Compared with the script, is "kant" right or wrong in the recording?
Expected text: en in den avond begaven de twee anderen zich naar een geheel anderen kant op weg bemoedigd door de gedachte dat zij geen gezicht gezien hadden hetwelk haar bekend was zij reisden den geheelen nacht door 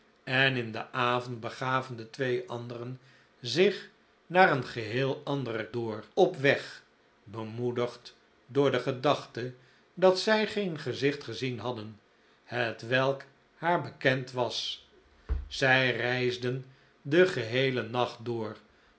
wrong